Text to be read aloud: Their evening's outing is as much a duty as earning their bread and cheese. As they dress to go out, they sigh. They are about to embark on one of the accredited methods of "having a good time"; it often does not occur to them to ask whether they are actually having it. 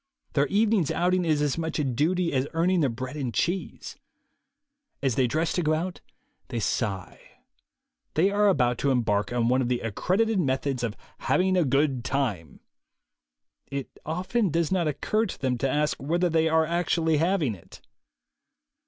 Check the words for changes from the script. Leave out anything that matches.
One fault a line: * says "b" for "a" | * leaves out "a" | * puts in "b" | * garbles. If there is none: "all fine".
all fine